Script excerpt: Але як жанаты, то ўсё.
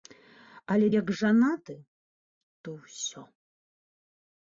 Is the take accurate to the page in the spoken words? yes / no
yes